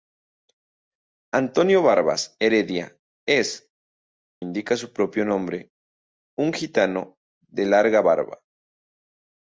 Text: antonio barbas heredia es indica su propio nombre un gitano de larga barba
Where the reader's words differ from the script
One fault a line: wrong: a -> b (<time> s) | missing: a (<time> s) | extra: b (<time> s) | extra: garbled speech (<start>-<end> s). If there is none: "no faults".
no faults